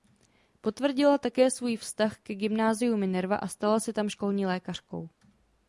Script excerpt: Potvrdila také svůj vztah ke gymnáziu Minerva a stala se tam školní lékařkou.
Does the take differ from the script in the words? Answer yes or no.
no